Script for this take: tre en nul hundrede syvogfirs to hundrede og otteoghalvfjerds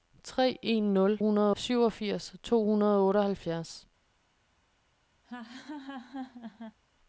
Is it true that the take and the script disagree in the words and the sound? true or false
true